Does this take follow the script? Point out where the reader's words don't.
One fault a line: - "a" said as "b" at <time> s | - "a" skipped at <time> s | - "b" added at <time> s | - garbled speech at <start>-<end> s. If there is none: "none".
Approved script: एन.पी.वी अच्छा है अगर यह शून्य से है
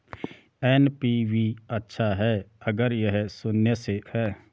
none